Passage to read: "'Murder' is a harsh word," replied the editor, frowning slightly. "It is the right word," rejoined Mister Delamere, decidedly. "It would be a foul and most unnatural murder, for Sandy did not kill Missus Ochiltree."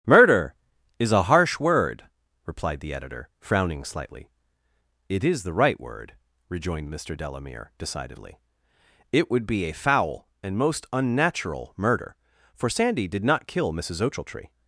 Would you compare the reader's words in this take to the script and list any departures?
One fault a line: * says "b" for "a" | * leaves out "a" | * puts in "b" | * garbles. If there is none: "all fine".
all fine